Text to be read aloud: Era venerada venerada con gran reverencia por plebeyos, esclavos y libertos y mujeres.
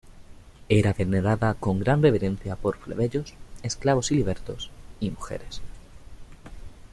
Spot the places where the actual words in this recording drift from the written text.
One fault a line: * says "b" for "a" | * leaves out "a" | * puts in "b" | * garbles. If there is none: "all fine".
* leaves out "venerada"